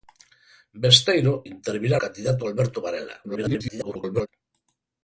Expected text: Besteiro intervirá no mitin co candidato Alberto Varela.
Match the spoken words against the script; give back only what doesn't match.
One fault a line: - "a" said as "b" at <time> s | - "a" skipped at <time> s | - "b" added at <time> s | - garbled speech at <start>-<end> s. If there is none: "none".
- "no mitin co" skipped at 2.0 s
- garbled speech at 3.2-4.3 s